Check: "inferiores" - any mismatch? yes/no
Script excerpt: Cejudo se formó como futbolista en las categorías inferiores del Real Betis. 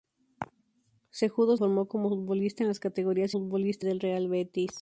yes